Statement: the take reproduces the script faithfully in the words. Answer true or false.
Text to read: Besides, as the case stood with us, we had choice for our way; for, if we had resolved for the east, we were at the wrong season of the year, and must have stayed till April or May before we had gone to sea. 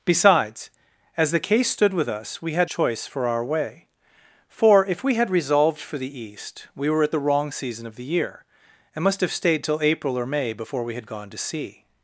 true